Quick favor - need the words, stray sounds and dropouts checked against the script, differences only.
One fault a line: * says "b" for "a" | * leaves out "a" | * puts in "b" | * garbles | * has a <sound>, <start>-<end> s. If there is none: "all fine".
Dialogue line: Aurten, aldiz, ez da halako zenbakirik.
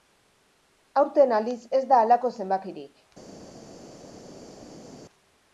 all fine